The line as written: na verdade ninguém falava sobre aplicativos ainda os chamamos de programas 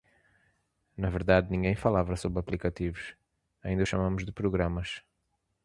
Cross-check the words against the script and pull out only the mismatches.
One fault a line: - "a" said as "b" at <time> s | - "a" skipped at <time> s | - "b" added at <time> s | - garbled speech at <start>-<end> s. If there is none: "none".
none